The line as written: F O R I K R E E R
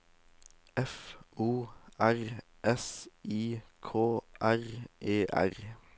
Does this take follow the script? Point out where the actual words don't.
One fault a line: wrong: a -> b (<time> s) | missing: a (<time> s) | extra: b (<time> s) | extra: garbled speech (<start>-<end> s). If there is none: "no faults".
extra: S (2.6 s)
missing: E (5.2 s)